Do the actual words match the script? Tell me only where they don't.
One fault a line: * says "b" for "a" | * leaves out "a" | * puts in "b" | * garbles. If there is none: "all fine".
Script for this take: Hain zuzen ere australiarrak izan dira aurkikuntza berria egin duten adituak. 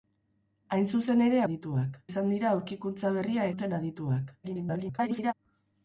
* says "adituak" for "australiarrak"
* leaves out "egin"
* garbles